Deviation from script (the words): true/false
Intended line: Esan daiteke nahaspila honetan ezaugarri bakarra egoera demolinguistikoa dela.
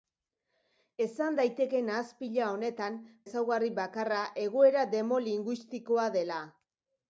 false